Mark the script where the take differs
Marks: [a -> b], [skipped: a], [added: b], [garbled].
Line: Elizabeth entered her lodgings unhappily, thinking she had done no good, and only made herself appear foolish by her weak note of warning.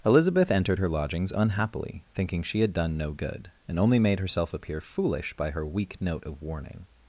Elizabeth entered her lodgings unhappily, thinking she had done no good, and only made herself appear foolish by her weak note of warning.